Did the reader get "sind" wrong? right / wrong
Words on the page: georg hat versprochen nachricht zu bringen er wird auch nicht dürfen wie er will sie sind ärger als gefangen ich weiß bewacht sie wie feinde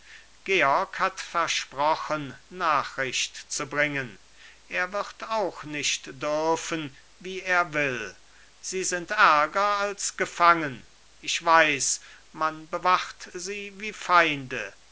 right